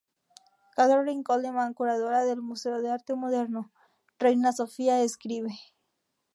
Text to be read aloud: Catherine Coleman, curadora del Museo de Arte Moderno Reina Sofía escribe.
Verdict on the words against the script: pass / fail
pass